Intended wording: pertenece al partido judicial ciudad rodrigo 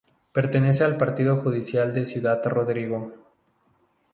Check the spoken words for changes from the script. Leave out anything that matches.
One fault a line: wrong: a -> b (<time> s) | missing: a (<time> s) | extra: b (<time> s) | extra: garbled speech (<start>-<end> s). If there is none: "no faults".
extra: de (1.9 s)